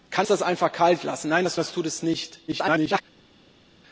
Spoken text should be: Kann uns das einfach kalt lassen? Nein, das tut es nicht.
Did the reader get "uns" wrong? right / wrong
wrong